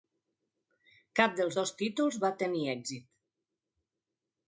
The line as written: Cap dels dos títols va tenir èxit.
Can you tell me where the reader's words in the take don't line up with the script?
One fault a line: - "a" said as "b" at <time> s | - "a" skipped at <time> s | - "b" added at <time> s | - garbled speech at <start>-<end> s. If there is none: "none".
none